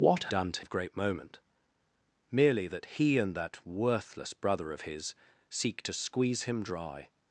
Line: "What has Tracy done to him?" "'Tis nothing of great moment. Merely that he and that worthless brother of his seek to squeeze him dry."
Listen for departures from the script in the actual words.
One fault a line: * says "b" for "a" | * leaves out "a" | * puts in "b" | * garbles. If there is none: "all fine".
* leaves out "has Tracy"
* leaves out "him Tis nothing"